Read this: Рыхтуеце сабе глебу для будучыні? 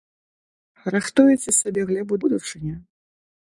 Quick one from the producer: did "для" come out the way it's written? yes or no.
no